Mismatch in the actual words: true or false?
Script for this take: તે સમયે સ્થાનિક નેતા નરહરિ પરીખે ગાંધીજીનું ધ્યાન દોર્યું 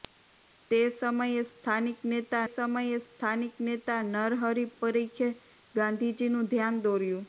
true